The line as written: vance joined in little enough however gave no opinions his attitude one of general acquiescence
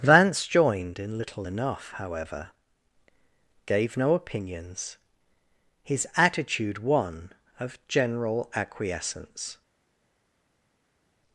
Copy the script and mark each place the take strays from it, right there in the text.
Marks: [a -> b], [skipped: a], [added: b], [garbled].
vance joined in little enough however gave no opinions his attitude one of general acquiescence